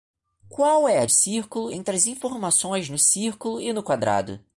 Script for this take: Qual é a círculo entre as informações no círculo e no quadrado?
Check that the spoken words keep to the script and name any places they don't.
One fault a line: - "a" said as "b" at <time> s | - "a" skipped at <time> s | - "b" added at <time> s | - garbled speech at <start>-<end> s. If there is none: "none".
none